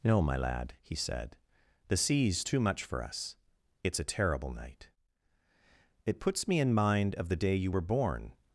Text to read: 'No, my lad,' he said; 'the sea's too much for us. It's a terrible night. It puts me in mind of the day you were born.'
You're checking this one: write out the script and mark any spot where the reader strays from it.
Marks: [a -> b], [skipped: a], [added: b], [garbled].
'No, my lad,' he said; 'the sea's too much for us. It's a terrible night. It puts me in mind of the day you were born.'